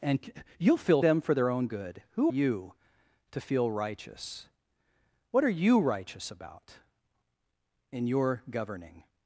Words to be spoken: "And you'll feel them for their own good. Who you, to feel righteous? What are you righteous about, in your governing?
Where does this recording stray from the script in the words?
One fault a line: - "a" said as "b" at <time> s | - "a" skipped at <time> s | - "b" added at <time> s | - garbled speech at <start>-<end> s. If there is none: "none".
none